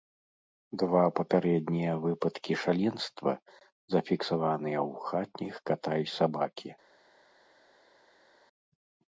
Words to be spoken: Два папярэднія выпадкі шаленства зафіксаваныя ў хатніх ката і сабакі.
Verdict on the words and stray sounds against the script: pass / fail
pass